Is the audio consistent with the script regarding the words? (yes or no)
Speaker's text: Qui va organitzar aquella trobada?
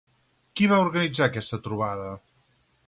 no